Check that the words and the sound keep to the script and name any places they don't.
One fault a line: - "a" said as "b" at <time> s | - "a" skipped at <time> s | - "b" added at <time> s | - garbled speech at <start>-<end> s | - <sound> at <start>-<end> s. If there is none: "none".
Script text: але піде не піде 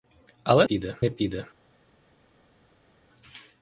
none